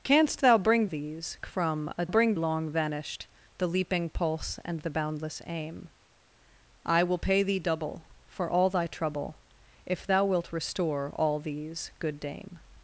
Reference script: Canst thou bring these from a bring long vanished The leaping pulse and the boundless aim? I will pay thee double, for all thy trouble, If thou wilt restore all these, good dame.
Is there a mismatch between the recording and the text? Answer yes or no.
no